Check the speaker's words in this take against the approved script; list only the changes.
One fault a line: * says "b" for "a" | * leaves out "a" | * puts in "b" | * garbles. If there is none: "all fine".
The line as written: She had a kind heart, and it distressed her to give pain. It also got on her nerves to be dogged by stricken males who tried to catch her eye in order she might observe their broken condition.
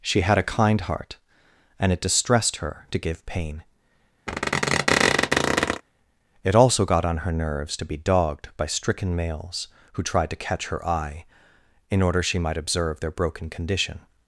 all fine